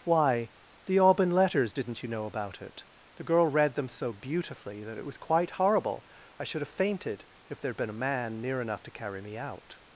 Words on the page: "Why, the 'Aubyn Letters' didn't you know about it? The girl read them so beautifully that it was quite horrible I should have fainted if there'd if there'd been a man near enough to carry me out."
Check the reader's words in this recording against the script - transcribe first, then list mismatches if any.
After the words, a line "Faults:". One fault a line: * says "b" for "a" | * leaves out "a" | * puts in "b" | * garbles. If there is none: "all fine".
"Why, the 'Aubyn Letters' didn't you know about it? The girl read them so beautifully that it was quite horrible I should have fainted if there'd been a man near enough to carry me out."
Faults:
* leaves out "if there'd"